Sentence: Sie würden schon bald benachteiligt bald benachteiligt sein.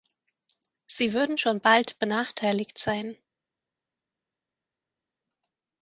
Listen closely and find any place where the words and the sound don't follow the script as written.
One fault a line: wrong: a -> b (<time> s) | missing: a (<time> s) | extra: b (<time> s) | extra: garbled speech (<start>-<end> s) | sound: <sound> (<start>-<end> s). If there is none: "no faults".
missing: bald benachteiligt (2.8 s)